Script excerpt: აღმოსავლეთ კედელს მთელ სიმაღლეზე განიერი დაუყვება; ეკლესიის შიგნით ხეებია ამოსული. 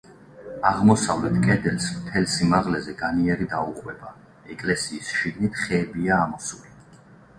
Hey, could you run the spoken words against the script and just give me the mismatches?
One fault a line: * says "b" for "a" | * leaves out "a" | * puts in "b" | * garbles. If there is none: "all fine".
all fine